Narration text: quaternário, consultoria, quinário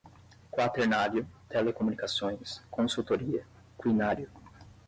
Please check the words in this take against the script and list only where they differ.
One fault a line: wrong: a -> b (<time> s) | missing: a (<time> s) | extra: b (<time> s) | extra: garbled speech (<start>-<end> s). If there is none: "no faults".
extra: telecomunicações (1.5 s)